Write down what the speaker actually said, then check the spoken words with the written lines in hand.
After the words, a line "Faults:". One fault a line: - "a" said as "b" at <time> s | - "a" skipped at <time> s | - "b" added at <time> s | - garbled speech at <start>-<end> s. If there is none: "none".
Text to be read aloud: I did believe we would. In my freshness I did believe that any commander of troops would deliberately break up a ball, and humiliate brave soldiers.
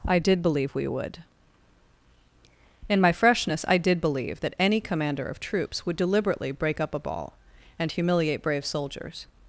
I did believe we would. In my freshness I did believe that any commander of troops would deliberately break up a ball, and humiliate brave soldiers.
Faults:
none